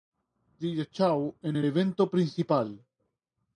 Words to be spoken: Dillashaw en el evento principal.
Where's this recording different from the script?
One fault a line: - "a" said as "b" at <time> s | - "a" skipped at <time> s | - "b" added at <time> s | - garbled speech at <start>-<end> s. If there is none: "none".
none